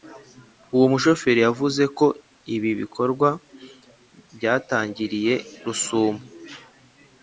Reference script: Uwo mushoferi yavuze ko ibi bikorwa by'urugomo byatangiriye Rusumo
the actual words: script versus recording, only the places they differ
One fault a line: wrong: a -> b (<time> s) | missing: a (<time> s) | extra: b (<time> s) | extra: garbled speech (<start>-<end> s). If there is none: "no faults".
missing: by'urugomo (3.3 s)